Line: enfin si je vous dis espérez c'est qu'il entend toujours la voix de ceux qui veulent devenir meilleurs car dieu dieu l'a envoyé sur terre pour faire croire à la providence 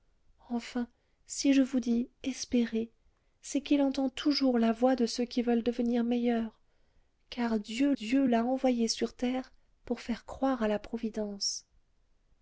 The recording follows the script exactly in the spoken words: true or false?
true